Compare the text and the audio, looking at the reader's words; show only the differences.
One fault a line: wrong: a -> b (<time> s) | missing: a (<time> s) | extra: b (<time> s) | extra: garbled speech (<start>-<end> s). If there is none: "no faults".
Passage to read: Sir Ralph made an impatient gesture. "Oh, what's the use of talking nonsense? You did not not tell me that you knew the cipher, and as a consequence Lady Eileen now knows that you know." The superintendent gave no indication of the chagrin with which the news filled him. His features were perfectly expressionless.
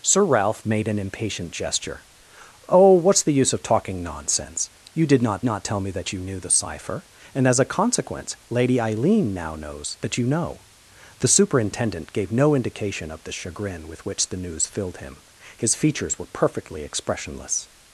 no faults